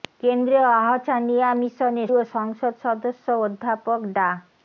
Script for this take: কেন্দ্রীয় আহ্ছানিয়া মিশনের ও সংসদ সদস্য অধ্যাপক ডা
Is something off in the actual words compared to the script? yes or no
no